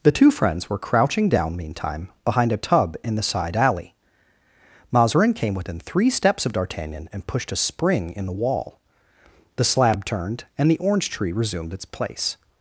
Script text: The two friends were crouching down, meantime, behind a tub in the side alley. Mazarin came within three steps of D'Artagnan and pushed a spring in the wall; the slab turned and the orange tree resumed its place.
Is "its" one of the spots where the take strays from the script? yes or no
no